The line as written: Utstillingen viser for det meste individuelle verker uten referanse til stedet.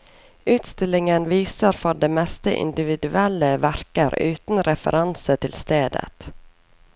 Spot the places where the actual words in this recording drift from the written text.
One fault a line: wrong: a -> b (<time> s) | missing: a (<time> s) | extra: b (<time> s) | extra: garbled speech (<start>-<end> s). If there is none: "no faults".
no faults